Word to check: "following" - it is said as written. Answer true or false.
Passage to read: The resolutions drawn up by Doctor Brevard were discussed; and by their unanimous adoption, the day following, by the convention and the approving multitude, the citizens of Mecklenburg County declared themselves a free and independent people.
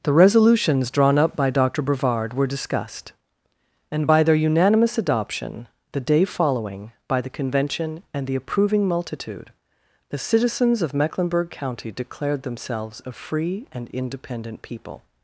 true